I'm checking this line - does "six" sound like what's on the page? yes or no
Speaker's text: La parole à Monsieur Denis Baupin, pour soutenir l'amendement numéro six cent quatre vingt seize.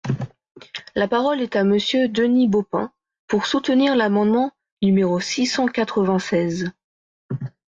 yes